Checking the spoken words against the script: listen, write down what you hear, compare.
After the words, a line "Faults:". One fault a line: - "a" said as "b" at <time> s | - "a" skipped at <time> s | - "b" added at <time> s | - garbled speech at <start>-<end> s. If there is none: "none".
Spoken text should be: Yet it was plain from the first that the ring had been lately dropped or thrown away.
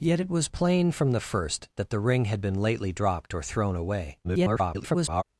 Yet it was plain from the first that the ring had been lately dropped or thrown away. [garbled]
Faults:
- garbled speech at 4.2-5.2 s